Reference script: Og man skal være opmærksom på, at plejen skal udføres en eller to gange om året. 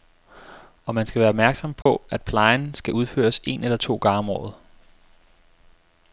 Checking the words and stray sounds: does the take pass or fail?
fail